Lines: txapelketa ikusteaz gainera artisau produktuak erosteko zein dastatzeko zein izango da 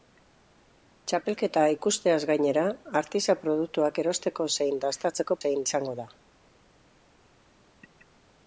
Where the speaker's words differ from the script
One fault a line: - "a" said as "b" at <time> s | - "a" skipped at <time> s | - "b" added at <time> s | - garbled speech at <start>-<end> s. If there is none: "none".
none